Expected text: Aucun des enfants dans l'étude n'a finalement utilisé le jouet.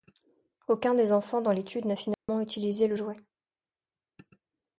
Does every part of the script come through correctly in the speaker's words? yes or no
yes